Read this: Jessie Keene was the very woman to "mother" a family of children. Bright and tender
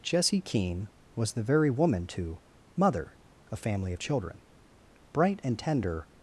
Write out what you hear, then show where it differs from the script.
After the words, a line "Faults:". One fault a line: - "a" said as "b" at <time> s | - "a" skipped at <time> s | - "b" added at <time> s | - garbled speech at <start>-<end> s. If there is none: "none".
Jessie Keene was the very woman to "mother" a family of children. Bright and tender
Faults:
none